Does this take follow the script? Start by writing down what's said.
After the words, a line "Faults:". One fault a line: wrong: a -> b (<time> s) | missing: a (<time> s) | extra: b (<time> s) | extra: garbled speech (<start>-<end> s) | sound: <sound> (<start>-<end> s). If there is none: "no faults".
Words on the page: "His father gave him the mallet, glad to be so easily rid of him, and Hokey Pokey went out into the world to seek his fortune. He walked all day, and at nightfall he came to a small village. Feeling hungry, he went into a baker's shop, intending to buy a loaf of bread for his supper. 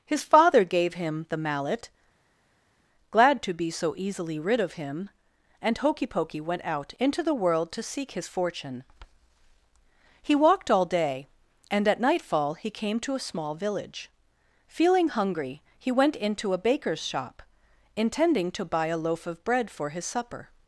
"His father gave him the mallet, glad to be so easily rid of him, and Hokey Pokey went out into the world to seek his fortune. He walked all day, and at nightfall he came to a small village. Feeling hungry, he went into a baker's shop, intending to buy a loaf of bread for his supper.
Faults:
no faults